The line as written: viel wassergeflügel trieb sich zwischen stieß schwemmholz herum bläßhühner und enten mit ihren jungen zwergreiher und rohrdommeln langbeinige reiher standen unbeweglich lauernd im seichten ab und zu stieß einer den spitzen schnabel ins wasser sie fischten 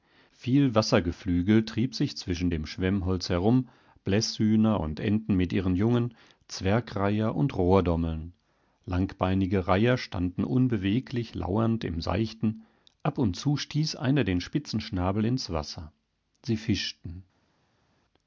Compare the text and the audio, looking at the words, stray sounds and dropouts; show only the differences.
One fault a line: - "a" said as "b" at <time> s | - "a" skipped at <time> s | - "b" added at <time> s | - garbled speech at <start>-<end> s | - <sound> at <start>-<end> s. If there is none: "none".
- "stieß" said as "dem" at 2.5 s